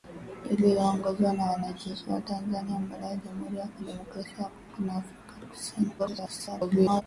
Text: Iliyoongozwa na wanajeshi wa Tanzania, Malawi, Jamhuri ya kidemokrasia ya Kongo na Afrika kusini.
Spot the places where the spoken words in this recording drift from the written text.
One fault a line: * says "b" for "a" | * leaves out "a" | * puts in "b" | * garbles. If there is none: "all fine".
* garbles